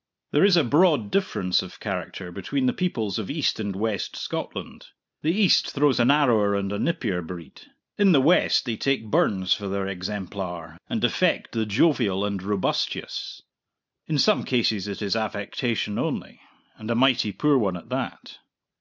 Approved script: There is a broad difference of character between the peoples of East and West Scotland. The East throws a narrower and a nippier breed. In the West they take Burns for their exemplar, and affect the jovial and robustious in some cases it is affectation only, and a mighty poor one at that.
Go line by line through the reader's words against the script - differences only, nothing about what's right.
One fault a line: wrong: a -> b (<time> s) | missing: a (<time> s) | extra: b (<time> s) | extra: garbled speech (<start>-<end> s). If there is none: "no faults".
no faults